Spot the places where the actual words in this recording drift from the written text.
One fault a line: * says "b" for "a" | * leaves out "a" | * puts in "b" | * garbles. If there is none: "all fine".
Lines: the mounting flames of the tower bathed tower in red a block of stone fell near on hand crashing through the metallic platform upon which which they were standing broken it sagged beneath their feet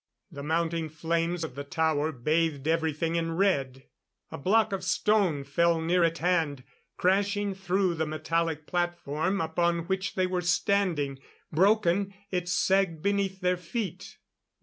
* says "everything" for "tower"
* says "at" for "on"
* leaves out "which"